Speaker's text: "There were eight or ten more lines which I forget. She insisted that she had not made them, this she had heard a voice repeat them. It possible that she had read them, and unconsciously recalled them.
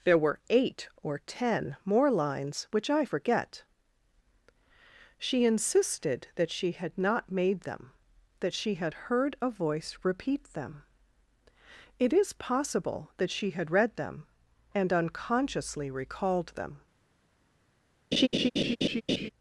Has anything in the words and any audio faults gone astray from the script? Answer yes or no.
yes